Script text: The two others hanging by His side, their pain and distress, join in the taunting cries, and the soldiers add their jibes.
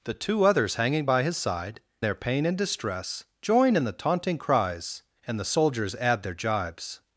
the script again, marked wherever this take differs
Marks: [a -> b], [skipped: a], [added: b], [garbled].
The two others hanging by His side, their pain and distress, join in the taunting cries, and the soldiers add their jibes.